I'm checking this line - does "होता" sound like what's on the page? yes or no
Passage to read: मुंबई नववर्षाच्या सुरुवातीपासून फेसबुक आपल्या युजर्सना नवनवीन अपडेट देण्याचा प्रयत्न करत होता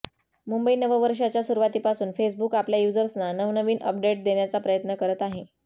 no